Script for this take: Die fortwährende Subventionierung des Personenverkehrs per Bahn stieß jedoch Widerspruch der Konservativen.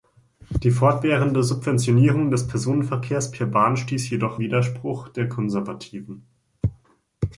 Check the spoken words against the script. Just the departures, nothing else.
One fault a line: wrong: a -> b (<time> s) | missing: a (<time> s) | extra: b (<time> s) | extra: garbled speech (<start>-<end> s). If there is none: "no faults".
no faults